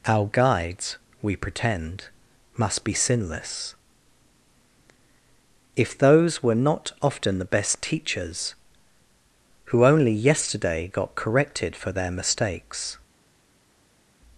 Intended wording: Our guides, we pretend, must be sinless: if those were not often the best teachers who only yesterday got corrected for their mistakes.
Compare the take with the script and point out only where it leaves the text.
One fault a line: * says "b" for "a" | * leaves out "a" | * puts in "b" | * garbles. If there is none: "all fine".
all fine